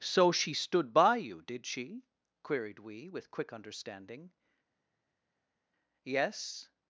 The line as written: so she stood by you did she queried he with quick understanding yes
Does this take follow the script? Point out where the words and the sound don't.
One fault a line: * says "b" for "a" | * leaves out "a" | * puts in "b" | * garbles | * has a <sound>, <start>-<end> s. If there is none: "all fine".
* says "we" for "he"